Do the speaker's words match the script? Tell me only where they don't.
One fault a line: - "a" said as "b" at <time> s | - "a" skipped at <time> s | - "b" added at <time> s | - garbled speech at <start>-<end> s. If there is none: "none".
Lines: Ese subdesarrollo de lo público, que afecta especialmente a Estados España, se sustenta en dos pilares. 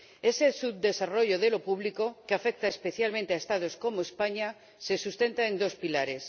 - "como" added at 3.8 s